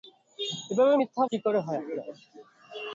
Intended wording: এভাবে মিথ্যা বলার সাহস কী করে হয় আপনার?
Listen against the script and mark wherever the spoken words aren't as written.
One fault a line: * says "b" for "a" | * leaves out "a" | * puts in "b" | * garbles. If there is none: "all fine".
* leaves out "বলার সাহস"